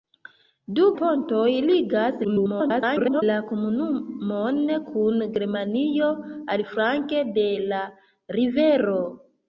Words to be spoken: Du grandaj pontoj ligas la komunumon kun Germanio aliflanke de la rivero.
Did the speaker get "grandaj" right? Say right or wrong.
wrong